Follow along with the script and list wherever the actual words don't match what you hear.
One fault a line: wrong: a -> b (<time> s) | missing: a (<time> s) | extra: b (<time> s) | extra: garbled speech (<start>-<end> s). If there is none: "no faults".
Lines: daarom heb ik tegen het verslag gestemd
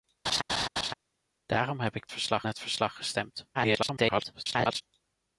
wrong: tegen -> verslag (2.1 s)
extra: garbled speech (3.5-4.8 s)